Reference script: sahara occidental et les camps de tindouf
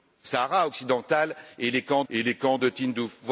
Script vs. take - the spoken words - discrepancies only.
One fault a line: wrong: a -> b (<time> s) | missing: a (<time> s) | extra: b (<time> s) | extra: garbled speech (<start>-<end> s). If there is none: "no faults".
extra: et les camps (2.1 s)